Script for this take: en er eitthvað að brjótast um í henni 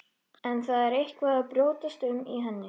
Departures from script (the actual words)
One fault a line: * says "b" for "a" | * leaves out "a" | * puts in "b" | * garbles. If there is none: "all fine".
* puts in "það"